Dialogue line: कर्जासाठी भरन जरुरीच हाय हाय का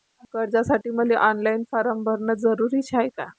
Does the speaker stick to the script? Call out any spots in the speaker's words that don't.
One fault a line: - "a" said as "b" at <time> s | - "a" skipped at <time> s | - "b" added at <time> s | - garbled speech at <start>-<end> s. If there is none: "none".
- "मले ऑनलाईन फारम" added at 0.9 s
- "हाय" skipped at 3.1 s